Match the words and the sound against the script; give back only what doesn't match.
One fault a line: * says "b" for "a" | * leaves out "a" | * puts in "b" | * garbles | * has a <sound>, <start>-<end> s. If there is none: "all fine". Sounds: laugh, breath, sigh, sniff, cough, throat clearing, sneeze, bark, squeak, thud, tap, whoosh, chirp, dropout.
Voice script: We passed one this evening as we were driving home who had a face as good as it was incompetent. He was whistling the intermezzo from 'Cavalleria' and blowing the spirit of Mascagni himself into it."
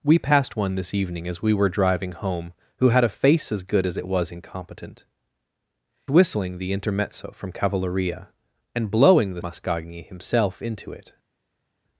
* leaves out "He was"
* leaves out "spirit of"